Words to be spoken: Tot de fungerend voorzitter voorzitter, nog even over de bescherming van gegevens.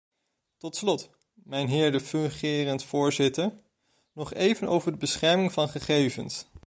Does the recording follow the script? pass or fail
fail